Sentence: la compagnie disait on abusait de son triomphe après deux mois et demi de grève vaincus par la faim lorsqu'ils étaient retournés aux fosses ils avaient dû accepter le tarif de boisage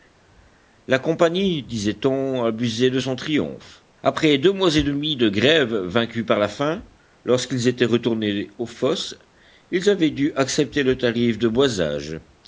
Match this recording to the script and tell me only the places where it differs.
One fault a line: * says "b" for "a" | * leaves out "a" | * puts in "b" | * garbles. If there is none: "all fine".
all fine